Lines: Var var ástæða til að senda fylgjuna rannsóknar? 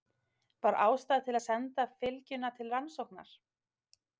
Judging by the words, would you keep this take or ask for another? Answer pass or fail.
fail